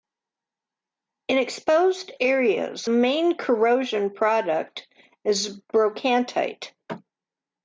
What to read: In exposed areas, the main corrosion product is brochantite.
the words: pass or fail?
fail